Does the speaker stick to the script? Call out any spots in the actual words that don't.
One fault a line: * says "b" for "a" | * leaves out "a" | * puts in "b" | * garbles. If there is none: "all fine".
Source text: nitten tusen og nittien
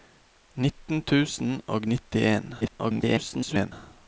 * garbles